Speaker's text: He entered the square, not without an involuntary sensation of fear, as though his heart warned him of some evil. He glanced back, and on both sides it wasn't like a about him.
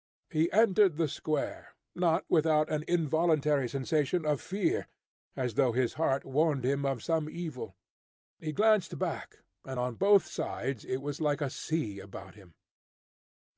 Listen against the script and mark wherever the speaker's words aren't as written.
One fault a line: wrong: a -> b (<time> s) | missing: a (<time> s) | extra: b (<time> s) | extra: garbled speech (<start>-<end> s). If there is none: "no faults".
wrong: wasn't -> was (11.0 s)
extra: sea (11.5 s)